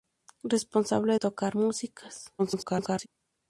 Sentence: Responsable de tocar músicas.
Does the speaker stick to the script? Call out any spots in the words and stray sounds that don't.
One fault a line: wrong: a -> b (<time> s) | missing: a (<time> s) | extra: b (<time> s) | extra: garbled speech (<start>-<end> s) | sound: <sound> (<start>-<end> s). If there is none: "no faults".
missing: de (1.2 s)
extra: garbled speech (2.4-3.1 s)